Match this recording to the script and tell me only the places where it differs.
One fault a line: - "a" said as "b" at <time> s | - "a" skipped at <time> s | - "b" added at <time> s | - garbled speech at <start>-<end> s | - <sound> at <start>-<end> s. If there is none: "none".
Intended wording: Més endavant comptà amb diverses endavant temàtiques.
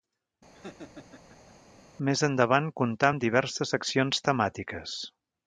- laugh at 0.5-1.5 s
- "endavant" said as "seccions" at 3.7 s